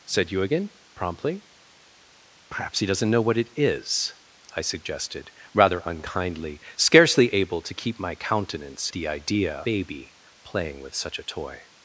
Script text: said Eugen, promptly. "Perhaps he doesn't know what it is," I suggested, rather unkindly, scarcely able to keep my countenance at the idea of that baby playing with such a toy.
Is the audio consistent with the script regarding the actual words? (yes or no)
no